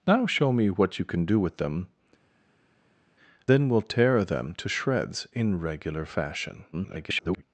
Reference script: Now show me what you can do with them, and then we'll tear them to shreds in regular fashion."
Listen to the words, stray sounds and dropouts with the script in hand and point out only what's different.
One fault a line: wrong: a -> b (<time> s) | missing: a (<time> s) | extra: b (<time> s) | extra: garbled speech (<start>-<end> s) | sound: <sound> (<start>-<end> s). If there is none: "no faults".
missing: and (1.9 s)
extra: garbled speech (6.7-7.4 s)